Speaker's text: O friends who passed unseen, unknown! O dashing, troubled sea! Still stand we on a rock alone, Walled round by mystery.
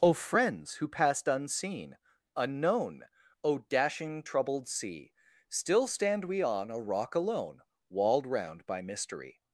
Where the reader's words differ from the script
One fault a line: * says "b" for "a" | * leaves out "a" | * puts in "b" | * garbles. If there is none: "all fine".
all fine